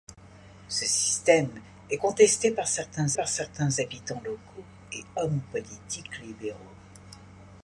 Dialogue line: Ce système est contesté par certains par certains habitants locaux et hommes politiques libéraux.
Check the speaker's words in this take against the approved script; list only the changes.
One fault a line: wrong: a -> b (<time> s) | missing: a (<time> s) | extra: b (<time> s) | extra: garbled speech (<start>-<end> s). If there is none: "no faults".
no faults